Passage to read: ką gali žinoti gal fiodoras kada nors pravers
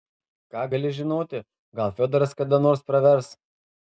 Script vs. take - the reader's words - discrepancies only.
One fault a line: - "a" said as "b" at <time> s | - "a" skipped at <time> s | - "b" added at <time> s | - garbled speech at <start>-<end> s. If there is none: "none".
none